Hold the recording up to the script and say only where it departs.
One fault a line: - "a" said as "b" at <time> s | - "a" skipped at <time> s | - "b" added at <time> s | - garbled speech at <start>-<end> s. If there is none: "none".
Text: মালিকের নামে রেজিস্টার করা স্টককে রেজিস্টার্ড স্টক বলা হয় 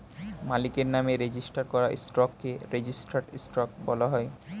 none